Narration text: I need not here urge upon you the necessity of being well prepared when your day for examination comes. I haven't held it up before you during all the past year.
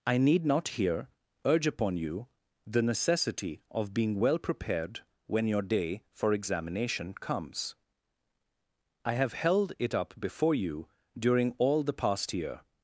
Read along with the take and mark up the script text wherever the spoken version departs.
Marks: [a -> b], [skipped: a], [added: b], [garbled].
I need not here urge upon you the necessity of being well prepared when your day for examination comes. I [haven't -> have] held it up before you during all the past year.